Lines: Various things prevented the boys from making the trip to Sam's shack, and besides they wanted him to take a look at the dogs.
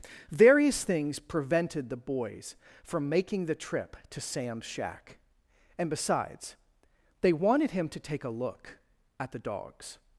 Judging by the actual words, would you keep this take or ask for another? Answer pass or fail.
pass